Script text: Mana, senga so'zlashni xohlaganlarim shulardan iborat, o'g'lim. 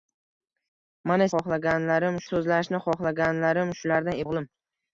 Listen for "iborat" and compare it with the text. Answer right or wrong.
wrong